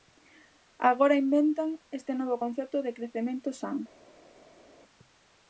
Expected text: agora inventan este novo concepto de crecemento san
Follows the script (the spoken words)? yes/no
yes